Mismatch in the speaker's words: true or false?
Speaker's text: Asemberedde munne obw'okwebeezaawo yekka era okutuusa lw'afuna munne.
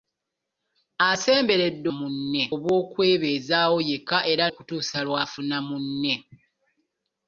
false